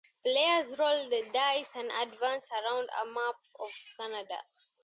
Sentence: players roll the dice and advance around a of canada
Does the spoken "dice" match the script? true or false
true